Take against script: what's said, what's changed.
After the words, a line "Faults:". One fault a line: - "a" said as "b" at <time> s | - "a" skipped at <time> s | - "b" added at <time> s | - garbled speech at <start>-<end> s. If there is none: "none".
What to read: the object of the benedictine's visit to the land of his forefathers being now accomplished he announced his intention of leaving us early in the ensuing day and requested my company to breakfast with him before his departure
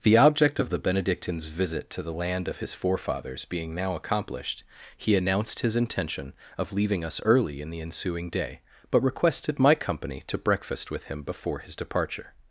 the object of the benedictine's visit to the land of his forefathers being now accomplished he announced his intention of leaving us early in the ensuing day but requested my company to breakfast with him before his departure
Faults:
- "and" said as "but" at 8.9 s